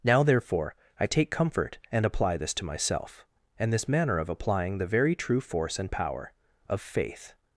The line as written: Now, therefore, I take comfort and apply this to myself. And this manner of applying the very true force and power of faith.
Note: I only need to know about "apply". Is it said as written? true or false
true